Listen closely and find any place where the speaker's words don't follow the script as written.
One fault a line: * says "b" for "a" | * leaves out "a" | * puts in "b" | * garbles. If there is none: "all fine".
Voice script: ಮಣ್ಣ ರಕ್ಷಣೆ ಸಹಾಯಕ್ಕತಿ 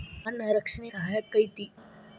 all fine